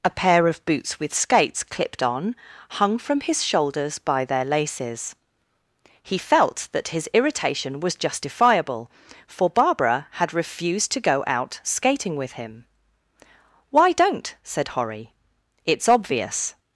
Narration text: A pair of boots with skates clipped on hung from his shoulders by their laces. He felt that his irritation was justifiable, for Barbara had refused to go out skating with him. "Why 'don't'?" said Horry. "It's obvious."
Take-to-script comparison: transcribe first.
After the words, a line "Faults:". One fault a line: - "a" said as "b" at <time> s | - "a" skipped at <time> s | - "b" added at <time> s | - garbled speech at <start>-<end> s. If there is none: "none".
A pair of boots with skates clipped on hung from his shoulders by their laces. He felt that his irritation was justifiable, for Barbara had refused to go out skating with him. "Why 'don't'?" said Horry. "It's obvious."
Faults:
none